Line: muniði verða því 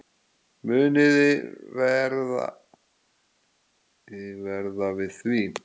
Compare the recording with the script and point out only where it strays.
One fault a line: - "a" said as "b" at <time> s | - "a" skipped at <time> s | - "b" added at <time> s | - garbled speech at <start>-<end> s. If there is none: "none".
- "við" added at 5.0 s